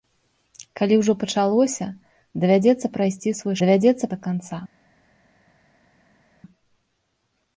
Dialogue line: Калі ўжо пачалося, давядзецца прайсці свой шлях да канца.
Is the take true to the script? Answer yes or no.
no